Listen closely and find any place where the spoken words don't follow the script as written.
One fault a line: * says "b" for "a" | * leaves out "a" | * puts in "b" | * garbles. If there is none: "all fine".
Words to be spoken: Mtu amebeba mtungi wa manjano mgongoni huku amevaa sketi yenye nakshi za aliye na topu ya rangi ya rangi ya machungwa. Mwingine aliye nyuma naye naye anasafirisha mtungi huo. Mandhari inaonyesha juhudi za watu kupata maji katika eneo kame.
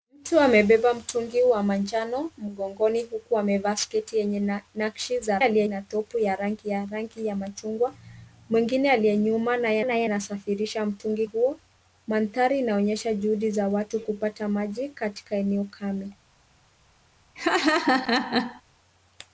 all fine